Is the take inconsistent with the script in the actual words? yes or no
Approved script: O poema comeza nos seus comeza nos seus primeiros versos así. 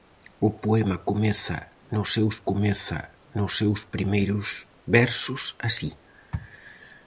no